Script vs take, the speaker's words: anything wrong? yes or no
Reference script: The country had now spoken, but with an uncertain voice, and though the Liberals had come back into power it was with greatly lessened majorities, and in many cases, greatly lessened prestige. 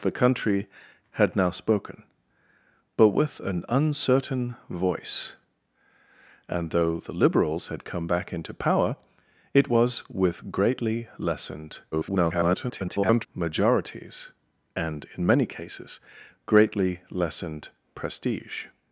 yes